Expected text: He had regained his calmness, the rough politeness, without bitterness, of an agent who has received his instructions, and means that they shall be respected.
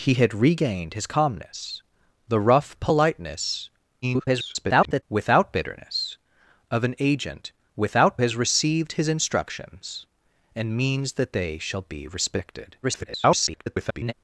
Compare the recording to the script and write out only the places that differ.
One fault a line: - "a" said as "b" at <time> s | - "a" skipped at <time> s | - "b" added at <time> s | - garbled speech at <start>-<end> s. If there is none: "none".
- garbled speech at 4.0-5.0 s
- "who" said as "without" at 7.8 s
- garbled speech at 12.8-14.1 s